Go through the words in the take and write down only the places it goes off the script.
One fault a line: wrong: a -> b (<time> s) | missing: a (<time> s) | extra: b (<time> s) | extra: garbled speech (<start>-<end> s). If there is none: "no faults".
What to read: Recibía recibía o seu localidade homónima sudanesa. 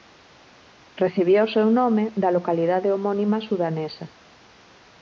missing: recibía (1.5 s)
extra: nome da (1.8 s)